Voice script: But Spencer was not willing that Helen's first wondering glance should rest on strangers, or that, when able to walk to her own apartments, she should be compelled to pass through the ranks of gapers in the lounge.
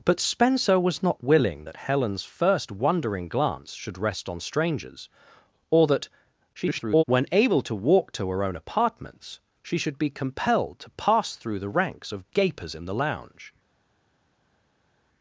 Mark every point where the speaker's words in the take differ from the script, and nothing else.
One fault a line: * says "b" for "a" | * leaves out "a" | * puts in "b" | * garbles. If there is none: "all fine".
* garbles